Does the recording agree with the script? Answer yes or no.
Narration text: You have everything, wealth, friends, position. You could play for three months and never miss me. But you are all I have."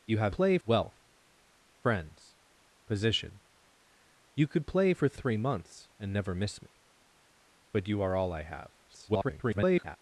no